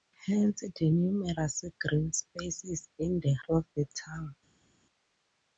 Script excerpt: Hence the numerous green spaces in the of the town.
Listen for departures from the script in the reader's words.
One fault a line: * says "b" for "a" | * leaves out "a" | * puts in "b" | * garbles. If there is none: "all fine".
all fine